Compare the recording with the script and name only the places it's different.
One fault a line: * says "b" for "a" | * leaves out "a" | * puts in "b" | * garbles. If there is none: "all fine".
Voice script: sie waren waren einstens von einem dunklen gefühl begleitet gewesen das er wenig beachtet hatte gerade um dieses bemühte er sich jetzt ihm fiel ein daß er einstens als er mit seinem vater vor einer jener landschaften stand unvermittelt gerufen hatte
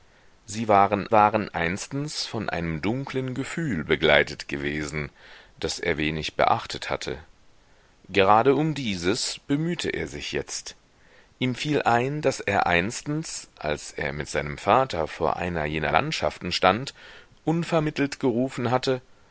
all fine